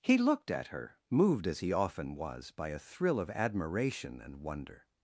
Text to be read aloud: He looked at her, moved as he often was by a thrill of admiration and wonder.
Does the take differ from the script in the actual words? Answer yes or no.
no